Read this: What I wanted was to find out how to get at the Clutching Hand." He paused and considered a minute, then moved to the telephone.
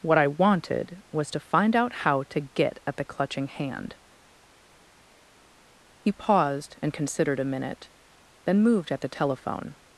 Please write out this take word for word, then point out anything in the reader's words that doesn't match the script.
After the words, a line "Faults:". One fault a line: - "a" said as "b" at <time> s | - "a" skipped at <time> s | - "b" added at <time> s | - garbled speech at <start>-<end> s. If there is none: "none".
What I wanted was to find out how to get at the Clutching Hand." He paused and considered a minute, then moved at the telephone.
Faults:
- "to" said as "at" at 8.9 s